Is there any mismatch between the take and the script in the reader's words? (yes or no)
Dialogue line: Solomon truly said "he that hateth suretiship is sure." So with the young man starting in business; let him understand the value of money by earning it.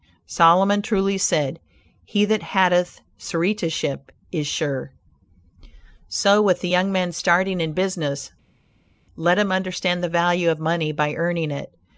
no